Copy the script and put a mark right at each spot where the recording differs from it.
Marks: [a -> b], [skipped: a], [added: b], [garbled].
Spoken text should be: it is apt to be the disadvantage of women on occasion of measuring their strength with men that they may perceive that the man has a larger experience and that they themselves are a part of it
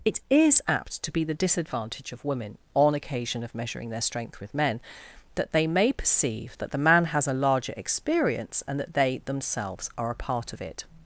it is apt to be the disadvantage of women on occasion of measuring their strength with men that they may perceive that the man has a larger experience and that they themselves are a part of it